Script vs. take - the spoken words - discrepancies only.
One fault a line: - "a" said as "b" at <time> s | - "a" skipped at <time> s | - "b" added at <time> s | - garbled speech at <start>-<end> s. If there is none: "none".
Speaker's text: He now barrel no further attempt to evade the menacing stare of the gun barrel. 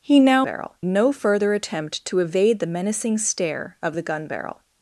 none